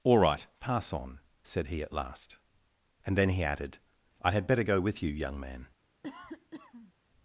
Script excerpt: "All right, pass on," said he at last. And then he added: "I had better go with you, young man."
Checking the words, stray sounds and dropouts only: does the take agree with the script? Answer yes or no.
no